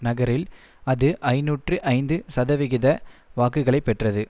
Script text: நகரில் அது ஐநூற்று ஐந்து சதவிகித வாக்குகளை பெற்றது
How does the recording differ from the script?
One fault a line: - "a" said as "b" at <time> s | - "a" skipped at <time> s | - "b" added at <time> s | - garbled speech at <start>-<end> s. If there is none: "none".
none